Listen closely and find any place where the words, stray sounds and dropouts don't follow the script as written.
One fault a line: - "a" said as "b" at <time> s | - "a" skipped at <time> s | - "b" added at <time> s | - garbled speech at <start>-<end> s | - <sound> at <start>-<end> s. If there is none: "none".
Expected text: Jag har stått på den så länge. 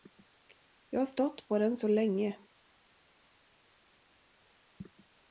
none